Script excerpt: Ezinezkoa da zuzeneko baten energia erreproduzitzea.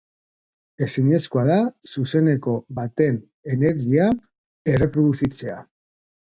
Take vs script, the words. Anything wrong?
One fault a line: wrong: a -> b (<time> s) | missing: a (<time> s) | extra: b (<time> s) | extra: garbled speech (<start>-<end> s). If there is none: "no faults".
no faults